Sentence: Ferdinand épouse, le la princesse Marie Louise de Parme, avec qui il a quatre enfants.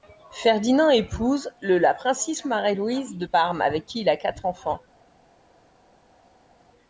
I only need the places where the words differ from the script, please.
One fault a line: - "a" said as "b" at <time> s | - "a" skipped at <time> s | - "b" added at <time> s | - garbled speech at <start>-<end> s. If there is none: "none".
none